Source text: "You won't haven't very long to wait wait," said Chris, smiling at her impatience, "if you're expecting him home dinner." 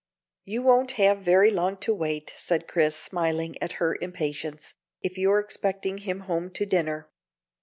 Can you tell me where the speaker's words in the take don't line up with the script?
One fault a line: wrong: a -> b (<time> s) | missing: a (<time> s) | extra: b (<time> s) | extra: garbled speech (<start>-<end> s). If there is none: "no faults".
wrong: haven't -> have (0.9 s)
missing: wait (2.3 s)
extra: to (6.5 s)